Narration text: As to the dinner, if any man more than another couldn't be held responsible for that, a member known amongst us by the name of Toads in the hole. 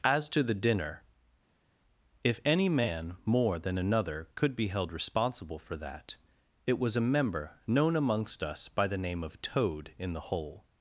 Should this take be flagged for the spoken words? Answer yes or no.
yes